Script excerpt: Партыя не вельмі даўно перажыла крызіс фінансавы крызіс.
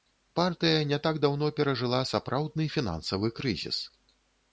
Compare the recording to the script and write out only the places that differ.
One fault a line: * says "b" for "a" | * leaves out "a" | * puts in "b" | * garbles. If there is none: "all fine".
* says "так" for "вельмі"
* says "сапраўдны" for "крызіс"